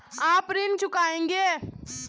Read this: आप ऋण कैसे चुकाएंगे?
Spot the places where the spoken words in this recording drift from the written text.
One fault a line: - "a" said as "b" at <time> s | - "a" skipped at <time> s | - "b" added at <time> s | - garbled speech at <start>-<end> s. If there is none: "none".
- "कैसे" skipped at 0.8 s